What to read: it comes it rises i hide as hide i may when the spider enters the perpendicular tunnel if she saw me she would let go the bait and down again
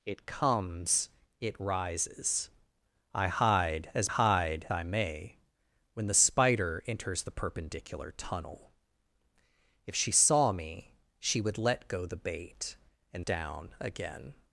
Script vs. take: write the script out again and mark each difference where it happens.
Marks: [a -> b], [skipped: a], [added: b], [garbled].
it comes it rises i hide as hide i may when the spider enters the perpendicular tunnel if she saw me she would let go the bait and down again